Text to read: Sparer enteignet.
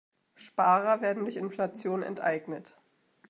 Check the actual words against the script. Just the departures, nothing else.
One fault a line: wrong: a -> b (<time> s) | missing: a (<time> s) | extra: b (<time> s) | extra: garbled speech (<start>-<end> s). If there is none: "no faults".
extra: werden durch Inflation (1.0 s)